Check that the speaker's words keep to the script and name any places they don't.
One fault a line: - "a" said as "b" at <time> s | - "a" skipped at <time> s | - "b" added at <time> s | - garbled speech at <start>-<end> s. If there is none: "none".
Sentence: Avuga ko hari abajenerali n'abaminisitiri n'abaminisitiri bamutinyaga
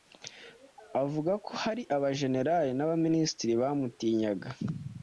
- "n'abaminisitiri" skipped at 3.5 s